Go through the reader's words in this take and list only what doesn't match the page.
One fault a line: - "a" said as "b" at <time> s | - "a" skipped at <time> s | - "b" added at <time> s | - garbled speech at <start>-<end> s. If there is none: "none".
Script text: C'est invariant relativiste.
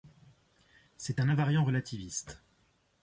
- "un" added at 1.2 s